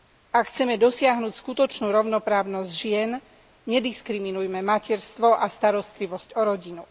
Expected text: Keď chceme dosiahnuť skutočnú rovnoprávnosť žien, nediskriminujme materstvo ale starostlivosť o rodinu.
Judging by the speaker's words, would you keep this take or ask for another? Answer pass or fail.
fail